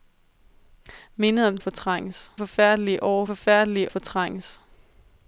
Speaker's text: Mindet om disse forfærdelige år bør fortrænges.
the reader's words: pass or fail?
fail